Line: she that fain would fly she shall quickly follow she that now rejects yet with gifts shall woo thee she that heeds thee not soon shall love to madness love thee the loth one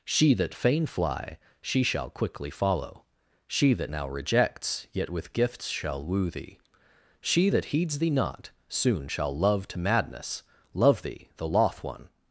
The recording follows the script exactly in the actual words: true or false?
false